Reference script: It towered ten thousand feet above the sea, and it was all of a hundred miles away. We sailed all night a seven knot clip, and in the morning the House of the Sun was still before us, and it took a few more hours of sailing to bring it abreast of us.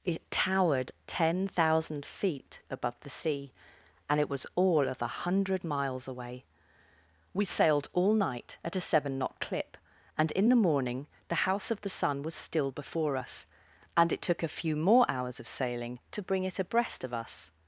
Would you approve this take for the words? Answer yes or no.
no